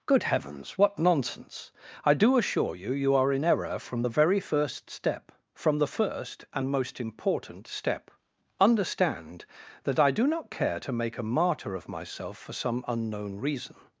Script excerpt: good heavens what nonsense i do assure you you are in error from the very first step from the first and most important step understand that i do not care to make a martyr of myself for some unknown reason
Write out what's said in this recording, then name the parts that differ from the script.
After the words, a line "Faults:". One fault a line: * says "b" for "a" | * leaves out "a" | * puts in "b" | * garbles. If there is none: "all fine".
good heavens what nonsense i do assure you you are in error from the very first step from the first and most important step understand that i do not care to make a martyr of myself for some unknown reason
Faults:
all fine